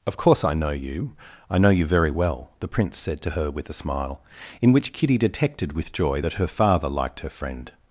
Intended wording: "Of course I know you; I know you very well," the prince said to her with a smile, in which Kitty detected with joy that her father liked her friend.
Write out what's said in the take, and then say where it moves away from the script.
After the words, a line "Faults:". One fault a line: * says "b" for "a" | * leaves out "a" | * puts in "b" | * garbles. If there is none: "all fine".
"Of course I know you; I know you very well," the prince said to her with a smile, in which Kitty detected with joy that her father liked her friend.
Faults:
all fine